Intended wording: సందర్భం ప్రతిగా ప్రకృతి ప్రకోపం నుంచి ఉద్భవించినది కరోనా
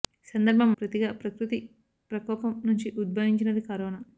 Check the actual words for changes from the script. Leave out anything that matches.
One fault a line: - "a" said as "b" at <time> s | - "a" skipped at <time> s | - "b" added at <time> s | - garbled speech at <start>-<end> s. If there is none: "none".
none